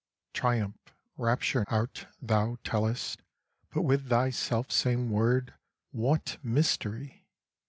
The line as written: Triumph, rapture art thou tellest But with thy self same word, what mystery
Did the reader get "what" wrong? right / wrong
right